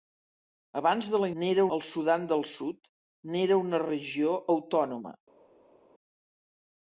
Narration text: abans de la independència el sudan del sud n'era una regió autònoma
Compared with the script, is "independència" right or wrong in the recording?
wrong